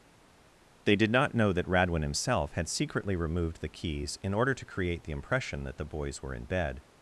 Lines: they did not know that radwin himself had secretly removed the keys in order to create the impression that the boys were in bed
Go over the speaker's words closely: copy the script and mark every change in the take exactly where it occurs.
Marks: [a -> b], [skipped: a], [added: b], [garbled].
they did not know that radwin himself had secretly removed the keys in order to create the impression that the boys were in bed